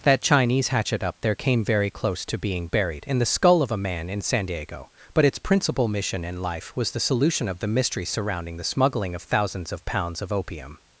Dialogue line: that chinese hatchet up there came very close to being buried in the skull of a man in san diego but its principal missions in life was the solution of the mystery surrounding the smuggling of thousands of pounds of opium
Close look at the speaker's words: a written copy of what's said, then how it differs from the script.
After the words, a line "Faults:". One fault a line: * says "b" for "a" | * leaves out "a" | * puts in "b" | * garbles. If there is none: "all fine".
that chinese hatchet up there came very close to being buried in the skull of a man in san diego but its principal mission in life was the solution of the mystery surrounding the smuggling of thousands of pounds of opium
Faults:
* says "mission" for "missions"